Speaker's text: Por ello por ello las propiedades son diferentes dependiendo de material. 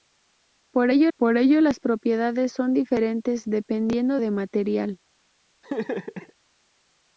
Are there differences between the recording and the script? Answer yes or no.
no